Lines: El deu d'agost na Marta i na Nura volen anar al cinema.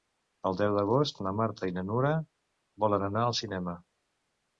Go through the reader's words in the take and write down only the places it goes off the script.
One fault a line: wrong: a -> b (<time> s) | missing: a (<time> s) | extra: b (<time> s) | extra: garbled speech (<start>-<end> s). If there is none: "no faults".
no faults